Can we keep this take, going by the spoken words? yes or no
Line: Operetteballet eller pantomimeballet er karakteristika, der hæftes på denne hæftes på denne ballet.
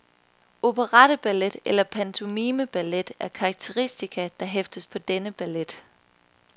no